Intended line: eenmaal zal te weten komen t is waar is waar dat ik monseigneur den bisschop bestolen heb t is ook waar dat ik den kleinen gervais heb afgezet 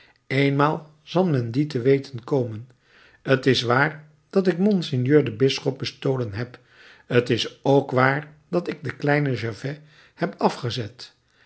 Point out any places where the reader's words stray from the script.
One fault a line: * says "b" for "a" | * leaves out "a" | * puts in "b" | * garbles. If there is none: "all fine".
* puts in "men dien"
* leaves out "is waar"